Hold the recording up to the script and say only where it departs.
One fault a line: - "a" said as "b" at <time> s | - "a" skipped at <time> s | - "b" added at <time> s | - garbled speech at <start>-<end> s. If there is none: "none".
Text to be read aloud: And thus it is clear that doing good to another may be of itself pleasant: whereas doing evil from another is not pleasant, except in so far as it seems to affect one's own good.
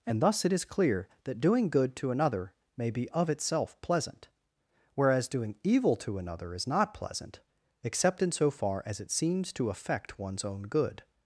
- "from" said as "to" at 6.0 s